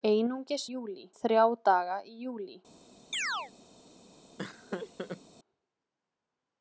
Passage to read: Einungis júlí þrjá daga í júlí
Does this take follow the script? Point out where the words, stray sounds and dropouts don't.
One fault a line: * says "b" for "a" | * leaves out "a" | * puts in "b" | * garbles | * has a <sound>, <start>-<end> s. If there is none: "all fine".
* has a chirp, 3.1-3.5 s
* has a laugh, 4.4-5.2 s